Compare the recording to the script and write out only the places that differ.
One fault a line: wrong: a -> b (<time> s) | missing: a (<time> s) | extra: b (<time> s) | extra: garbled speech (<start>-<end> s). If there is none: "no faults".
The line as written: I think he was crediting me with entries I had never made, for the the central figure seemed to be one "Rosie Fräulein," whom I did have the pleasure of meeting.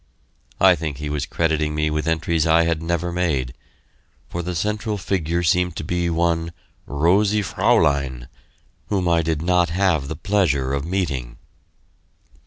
missing: the (4.5 s)
extra: not (9.4 s)